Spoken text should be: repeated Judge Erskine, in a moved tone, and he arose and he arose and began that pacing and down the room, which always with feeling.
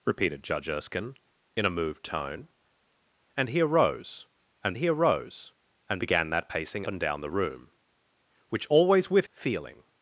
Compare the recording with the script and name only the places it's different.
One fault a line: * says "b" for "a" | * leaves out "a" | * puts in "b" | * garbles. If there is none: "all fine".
all fine